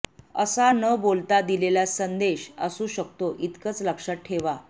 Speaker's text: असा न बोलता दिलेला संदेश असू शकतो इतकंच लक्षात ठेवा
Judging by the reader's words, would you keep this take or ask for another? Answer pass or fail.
pass